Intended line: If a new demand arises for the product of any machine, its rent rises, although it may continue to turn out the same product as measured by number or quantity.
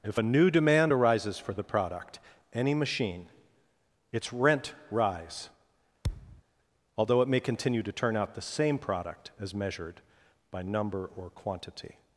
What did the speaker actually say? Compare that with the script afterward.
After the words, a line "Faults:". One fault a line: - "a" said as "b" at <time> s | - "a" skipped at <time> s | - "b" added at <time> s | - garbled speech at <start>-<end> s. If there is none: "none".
If a new demand arises for the product any machine, its rent rise, although it may continue to turn out the same product as measured by number or quantity.
Faults:
- "of" skipped at 2.2 s
- "rises" said as "rise" at 4.9 s